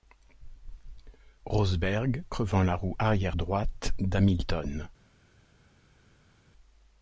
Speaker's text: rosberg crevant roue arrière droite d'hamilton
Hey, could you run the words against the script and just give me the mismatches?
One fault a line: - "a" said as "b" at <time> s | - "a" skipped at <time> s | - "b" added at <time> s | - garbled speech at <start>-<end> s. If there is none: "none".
- "la" added at 2.6 s